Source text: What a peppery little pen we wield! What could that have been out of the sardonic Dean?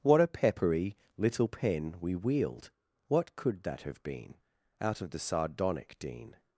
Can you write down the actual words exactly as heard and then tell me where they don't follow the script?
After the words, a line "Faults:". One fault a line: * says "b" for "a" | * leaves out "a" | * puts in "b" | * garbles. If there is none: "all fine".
What a peppery little pen we wield! What could that have been out of the sardonic Dean?
Faults:
all fine